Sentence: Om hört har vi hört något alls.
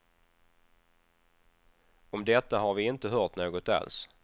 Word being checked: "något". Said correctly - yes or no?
yes